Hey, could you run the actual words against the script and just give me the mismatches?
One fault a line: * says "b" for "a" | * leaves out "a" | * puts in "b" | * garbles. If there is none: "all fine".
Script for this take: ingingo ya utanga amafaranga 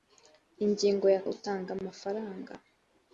all fine